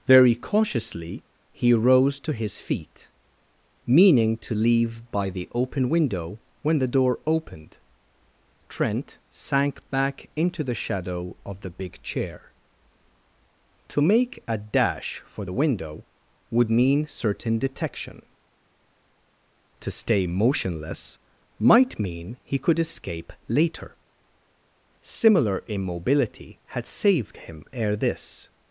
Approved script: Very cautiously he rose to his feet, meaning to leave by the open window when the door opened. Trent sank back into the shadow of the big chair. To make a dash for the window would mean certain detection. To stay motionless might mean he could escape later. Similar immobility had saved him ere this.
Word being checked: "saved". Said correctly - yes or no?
yes